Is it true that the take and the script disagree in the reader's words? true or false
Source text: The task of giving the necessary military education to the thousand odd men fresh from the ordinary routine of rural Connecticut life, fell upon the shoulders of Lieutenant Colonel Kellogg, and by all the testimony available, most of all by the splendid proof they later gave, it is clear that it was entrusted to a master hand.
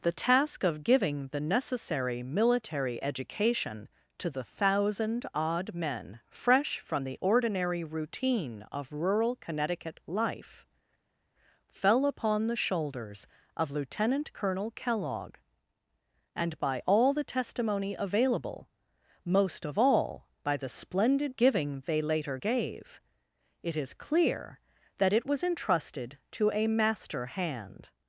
true